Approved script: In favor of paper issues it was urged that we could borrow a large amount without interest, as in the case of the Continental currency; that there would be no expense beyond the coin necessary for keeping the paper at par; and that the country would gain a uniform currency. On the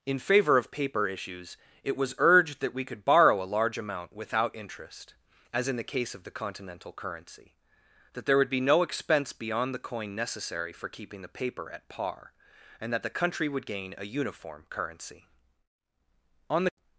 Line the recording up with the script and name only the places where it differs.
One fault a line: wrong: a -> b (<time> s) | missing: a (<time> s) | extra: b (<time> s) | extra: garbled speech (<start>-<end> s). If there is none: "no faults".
no faults